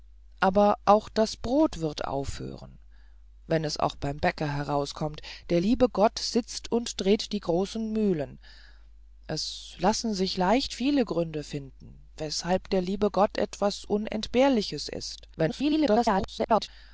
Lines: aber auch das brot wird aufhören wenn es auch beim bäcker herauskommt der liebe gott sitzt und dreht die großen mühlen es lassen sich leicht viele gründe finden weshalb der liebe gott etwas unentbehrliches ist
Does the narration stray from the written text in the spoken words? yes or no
yes